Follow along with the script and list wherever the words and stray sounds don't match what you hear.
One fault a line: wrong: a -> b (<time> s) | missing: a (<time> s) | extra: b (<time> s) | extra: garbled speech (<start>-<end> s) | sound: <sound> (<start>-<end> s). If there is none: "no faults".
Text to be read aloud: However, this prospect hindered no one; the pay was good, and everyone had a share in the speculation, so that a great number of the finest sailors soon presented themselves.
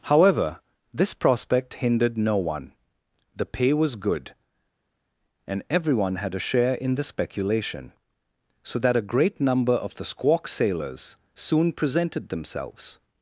wrong: finest -> squawk (10.0 s)